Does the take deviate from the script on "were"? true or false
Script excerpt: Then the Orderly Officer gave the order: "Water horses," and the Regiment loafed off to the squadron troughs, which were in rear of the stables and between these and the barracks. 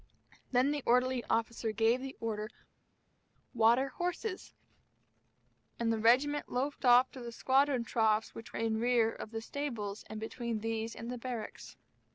true